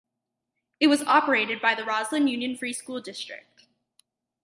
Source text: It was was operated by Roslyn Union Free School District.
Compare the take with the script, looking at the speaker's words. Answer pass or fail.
fail